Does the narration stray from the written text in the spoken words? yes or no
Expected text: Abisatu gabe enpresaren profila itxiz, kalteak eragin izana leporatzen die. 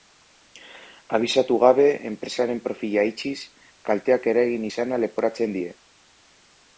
no